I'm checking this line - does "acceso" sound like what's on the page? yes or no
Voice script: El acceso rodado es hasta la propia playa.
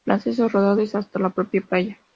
yes